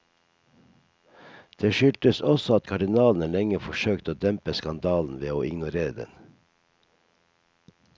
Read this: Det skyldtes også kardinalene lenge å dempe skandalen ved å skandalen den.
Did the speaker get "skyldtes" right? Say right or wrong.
right